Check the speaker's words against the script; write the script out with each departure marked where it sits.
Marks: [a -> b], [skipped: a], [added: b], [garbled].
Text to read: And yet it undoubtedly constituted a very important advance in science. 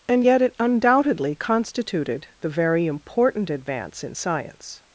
And yet it undoubtedly constituted [a -> the] very important advance in science.